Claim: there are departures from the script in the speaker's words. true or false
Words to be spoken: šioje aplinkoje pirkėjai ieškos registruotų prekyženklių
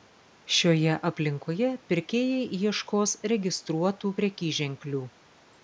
false